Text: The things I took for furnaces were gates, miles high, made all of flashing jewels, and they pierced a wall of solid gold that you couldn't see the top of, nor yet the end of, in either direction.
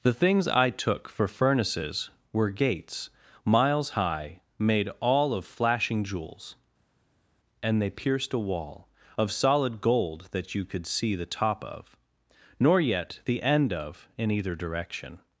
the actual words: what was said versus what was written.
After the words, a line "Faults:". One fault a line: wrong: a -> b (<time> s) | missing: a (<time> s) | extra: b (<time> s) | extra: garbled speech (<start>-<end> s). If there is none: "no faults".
The things I took for furnaces were gates, miles high, made all of flashing jewels, and they pierced a wall of solid gold that you could see the top of, nor yet the end of, in either direction.
Faults:
wrong: couldn't -> could (10.6 s)